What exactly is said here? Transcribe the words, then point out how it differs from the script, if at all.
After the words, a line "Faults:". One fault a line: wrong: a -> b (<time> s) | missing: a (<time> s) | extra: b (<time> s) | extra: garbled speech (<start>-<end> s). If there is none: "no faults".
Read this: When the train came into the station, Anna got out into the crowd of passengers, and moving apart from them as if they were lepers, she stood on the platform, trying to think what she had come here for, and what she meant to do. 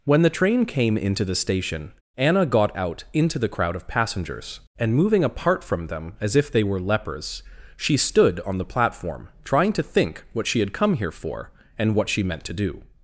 When the train came into the station, Anna got out into the crowd of passengers, and moving apart from them as if they were lepers, she stood on the platform, trying to think what she had come here for, and what she meant to do.
Faults:
no faults